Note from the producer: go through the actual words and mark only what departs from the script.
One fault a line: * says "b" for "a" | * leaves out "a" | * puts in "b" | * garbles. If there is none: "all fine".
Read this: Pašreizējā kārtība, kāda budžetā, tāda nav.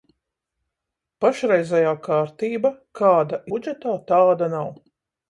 all fine